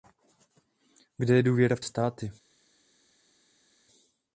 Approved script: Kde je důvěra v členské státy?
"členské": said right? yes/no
no